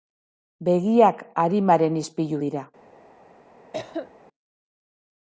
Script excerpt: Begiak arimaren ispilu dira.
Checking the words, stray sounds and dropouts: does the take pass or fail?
fail